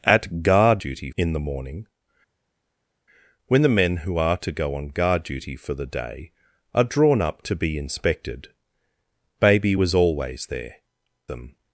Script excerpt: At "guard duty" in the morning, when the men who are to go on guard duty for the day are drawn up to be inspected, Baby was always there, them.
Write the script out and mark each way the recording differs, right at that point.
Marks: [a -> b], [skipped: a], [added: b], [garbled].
At "guard duty" in the morning, when the men who are to go on guard duty for the day are drawn up to be inspected, Baby was always there, them.